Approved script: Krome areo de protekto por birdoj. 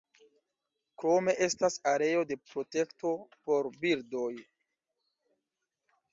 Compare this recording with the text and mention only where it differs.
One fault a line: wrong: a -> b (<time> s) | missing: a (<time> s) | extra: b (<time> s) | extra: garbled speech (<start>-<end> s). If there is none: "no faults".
extra: estas (1.5 s)